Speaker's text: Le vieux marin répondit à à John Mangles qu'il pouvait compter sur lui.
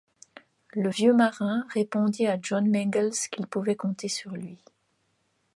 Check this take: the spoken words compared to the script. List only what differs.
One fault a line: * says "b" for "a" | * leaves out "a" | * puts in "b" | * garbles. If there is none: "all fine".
* leaves out "à"